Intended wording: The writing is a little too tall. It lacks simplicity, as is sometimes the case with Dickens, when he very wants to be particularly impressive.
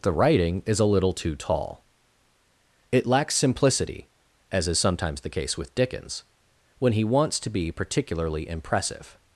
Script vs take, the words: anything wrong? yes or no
yes